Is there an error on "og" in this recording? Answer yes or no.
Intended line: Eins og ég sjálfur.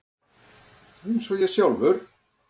no